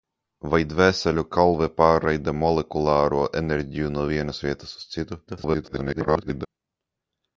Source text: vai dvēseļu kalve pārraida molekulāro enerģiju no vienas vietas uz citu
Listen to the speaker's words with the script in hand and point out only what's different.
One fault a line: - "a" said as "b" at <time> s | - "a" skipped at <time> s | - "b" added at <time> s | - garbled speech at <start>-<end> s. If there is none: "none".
- garbled speech at 5.3-6.5 s